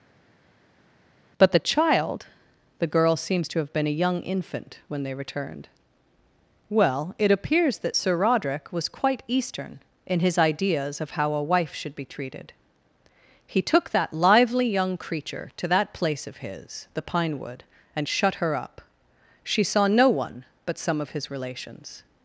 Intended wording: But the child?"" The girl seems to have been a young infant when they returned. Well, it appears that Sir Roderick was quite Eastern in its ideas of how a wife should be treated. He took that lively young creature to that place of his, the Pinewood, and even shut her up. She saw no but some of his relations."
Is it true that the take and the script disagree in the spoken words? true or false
true